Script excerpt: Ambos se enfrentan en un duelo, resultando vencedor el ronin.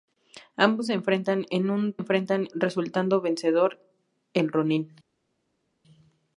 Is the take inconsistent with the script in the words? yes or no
yes